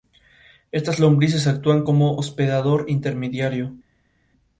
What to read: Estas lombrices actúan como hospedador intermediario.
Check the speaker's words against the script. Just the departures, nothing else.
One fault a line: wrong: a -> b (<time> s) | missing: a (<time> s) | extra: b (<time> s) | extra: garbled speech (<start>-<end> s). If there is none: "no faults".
no faults